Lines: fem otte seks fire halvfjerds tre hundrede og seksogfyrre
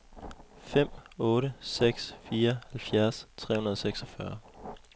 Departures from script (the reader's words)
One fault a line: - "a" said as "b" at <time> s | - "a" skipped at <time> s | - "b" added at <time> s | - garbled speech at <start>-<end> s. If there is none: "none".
none